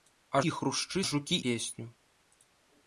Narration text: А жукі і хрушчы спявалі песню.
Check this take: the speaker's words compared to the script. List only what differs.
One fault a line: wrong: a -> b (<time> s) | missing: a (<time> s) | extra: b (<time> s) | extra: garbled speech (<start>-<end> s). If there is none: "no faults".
missing: жукі (0.4 s)
wrong: спявалі -> жукі (1.1 s)